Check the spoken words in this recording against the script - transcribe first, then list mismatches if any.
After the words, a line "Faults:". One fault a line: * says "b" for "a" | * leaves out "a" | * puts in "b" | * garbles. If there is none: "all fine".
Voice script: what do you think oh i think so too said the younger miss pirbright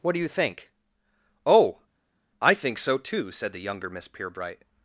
what do you think oh i think so too said the younger miss pirbright
Faults:
all fine